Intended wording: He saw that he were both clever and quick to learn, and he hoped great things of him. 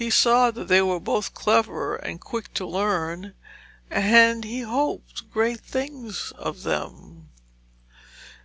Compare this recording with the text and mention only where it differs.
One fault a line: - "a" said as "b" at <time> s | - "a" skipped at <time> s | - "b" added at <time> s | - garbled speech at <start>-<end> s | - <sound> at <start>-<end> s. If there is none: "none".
- "he" said as "they" at 0.7 s
- "him" said as "them" at 6.6 s